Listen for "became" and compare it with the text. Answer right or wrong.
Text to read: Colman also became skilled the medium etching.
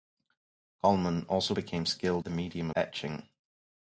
right